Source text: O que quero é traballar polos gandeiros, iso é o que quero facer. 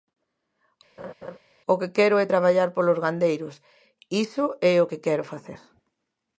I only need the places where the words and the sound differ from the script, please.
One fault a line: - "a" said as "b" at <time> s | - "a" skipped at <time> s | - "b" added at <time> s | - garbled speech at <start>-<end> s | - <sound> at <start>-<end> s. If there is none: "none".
- laugh at 1.0-1.4 s